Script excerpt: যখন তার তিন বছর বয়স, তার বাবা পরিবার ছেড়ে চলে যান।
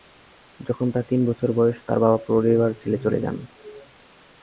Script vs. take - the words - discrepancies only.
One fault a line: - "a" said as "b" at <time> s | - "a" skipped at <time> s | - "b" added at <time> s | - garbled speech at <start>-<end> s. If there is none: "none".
none